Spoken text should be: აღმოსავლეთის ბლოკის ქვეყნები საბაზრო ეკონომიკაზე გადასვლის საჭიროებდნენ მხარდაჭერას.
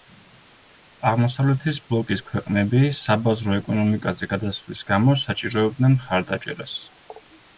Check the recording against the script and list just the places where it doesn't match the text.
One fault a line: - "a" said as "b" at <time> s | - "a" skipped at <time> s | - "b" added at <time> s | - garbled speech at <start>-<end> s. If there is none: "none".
- "გამო" added at 4.9 s